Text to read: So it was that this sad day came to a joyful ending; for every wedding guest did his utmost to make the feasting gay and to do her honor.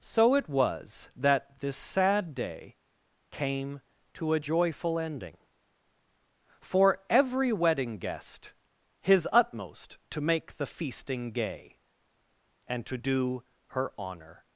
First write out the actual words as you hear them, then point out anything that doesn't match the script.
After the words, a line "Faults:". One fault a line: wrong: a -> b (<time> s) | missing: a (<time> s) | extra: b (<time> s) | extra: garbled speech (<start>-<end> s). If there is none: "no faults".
So it was that this sad day came to a joyful ending; for every wedding guest his utmost to make the feasting gay and to do her honor.
Faults:
missing: did (8.5 s)